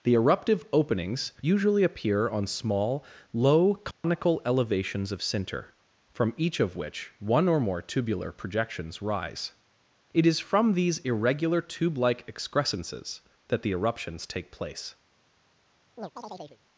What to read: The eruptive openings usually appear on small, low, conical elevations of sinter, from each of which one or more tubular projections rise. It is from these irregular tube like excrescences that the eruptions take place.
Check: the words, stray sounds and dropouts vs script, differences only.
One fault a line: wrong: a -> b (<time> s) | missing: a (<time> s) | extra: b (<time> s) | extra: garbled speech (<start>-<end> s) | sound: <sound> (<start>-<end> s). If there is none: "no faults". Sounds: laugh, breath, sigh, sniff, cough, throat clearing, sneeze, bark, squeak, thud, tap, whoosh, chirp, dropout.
sound: dropout (3.9-4.0 s)
sound: chirp (16.0-16.6 s)